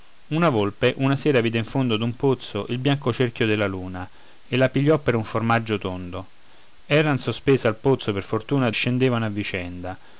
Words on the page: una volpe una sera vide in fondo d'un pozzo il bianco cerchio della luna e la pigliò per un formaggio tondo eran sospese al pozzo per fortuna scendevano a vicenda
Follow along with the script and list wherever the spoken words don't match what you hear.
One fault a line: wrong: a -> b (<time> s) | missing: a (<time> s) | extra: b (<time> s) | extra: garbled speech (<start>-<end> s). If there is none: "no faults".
no faults